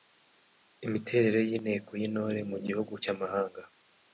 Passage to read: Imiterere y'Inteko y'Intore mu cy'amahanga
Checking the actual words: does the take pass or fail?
fail